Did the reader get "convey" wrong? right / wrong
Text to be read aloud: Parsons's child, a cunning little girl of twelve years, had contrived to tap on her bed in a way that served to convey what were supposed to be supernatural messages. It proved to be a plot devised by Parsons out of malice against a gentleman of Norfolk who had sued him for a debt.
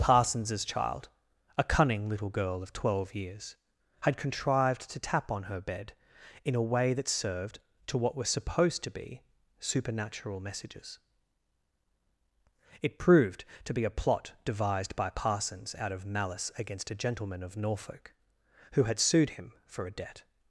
wrong